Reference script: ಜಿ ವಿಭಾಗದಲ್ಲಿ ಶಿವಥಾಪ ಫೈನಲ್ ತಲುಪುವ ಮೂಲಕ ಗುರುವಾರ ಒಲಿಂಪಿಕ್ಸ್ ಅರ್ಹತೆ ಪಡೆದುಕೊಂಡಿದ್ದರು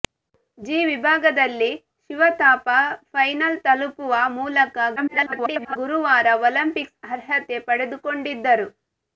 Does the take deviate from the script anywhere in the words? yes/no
yes